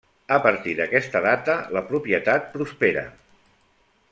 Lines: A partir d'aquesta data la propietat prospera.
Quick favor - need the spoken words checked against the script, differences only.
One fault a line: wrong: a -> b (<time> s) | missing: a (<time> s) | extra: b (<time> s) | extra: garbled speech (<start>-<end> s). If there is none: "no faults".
no faults